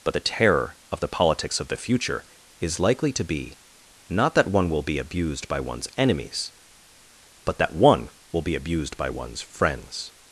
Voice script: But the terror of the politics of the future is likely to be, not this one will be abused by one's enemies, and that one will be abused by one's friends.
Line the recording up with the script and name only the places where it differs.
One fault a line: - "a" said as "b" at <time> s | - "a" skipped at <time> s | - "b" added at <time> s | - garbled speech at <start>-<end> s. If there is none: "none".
- "this" said as "that" at 4.3 s
- "and" said as "but" at 7.4 s